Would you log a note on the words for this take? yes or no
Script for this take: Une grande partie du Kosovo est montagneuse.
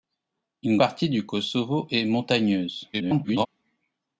yes